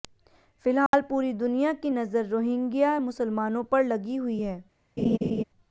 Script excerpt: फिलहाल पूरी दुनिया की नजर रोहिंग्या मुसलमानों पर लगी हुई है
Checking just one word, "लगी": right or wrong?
right